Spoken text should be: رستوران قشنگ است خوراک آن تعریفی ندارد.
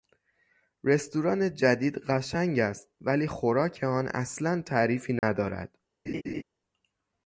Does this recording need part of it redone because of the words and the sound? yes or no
yes